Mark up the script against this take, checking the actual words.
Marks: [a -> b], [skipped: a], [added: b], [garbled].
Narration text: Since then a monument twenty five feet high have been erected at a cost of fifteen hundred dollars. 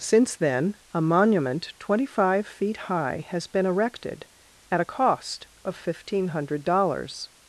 Since then a monument twenty five feet high [have -> has] been erected at a cost of fifteen hundred dollars.